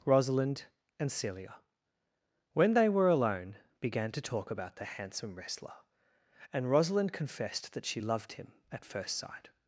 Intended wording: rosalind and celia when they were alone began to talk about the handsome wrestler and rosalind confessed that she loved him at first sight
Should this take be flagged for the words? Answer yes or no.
no